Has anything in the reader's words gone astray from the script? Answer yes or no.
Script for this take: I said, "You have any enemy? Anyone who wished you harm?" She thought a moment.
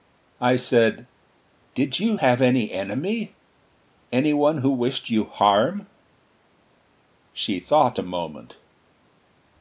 yes